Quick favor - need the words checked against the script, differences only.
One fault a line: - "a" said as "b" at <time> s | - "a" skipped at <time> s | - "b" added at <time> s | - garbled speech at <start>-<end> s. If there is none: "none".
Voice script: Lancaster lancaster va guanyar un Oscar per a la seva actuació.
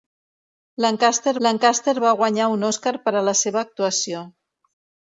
none